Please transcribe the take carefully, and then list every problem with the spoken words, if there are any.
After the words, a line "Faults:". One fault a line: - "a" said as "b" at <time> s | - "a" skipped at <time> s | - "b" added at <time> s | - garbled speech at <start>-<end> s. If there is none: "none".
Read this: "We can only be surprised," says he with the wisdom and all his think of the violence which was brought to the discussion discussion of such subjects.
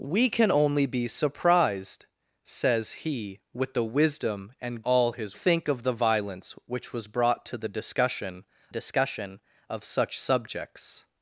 "We can only be surprised," says he with the wisdom and all his think of the violence which was brought to the discussion discussion of such subjects.
Faults:
none